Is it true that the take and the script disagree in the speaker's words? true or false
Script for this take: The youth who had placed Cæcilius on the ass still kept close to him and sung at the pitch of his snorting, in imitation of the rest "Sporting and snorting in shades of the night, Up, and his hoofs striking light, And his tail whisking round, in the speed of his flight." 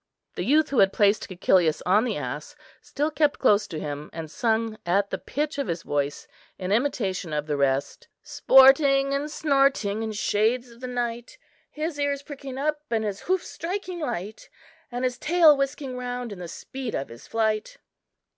true